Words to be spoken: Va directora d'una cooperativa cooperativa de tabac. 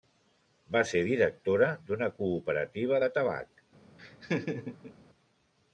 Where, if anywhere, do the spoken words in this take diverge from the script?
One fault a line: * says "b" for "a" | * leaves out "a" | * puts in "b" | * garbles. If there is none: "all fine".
* puts in "ser"
* leaves out "cooperativa"